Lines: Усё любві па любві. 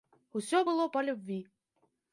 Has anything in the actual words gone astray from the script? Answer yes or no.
yes